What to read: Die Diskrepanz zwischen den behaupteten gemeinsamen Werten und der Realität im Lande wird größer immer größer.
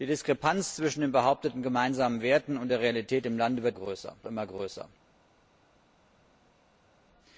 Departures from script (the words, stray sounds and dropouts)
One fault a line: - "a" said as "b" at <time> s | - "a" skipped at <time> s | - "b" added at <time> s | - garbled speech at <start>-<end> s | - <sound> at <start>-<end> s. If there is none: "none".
none